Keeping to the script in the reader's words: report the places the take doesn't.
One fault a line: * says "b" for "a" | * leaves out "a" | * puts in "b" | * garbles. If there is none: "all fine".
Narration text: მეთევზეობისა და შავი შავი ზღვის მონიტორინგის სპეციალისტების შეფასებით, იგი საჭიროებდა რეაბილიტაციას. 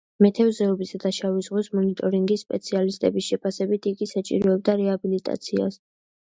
* leaves out "შავი"